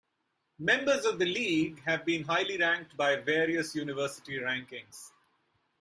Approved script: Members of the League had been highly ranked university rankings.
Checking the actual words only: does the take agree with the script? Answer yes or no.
no